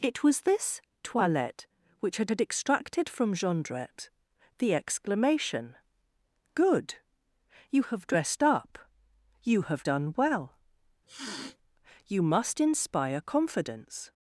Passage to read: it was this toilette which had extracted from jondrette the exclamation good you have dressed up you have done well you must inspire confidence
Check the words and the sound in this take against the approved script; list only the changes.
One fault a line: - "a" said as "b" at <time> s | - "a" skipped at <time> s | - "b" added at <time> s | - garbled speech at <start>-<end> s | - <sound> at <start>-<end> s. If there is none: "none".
- "had" added at 2.3 s
- sniff at 11.1-11.6 s